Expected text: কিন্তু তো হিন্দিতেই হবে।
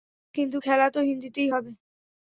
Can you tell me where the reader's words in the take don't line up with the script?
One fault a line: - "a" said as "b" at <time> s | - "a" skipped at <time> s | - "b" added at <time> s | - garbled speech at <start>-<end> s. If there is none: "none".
- "খেলা" added at 0.6 s